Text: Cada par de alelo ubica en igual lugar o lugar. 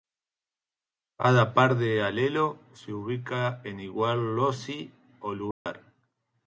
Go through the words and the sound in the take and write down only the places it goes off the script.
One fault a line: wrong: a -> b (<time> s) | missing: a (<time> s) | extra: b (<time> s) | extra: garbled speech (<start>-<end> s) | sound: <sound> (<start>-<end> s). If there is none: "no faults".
extra: se (2.7 s)
wrong: lugar -> loci (4.3 s)
sound: dropout (5.5-5.7 s)